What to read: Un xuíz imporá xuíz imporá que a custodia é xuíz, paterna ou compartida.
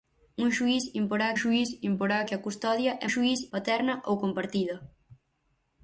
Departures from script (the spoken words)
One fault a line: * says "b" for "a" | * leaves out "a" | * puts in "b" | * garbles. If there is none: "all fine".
all fine